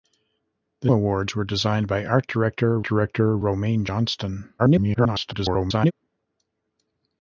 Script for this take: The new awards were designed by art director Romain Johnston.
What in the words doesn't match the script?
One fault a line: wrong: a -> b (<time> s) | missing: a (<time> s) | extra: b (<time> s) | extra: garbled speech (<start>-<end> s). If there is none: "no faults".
missing: new (0.9 s)
extra: director (2.8 s)
extra: garbled speech (4.6-5.9 s)